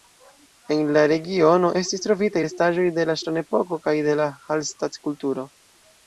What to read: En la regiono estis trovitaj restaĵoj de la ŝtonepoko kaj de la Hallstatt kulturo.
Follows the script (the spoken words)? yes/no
yes